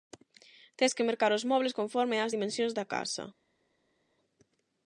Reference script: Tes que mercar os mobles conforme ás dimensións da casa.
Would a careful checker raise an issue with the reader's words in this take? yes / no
no